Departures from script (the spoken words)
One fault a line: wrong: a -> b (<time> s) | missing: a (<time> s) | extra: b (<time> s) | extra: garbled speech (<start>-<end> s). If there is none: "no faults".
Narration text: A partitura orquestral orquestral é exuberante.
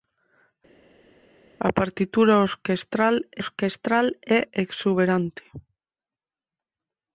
no faults